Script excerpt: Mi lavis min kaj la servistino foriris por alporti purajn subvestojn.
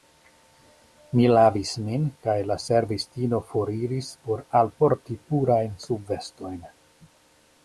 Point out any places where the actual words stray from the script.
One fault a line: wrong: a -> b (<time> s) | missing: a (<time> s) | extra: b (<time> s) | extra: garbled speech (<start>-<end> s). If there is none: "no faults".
no faults